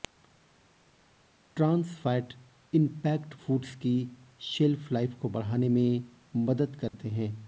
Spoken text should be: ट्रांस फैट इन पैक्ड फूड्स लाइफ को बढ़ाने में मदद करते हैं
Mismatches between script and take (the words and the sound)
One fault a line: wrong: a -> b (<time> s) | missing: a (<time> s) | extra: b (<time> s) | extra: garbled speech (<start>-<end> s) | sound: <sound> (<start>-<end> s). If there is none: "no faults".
extra: की शेल्फ (3.7 s)
sound: dropout (6.9-6.9 s)